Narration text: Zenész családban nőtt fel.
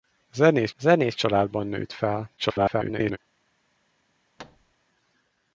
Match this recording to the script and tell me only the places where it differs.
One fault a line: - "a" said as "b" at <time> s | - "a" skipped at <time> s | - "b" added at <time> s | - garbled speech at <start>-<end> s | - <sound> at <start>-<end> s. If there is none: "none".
- "zenész" added at 0.8 s
- garbled speech at 2.4-3.2 s
- thud at 4.4-4.7 s